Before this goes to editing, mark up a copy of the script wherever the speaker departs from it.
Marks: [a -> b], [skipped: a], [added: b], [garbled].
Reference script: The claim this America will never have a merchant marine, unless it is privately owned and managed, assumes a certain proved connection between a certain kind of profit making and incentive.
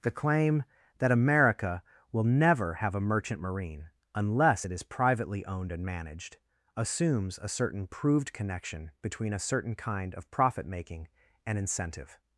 The claim [this -> that] America will never have a merchant marine, unless it is privately owned and managed, assumes a certain proved connection between a certain kind of profit making and incentive.